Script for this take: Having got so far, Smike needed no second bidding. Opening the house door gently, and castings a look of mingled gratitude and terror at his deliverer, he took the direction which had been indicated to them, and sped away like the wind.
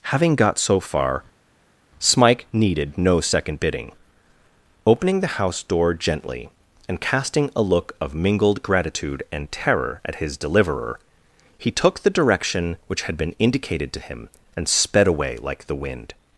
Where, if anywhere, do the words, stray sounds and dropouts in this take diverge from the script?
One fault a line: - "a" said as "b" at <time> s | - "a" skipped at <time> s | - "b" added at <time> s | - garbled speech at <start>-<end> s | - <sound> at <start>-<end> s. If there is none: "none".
- "castings" said as "casting" at 7.0 s
- "them" said as "him" at 14.0 s